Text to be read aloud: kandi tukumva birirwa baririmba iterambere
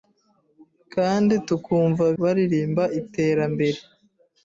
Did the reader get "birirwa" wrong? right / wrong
wrong